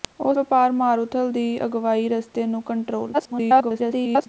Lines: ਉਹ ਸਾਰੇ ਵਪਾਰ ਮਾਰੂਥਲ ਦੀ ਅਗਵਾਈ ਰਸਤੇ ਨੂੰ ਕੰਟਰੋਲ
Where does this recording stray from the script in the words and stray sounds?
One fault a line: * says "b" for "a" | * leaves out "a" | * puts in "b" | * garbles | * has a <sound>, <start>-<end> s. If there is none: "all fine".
* leaves out "ਸਾਰੇ"
* garbles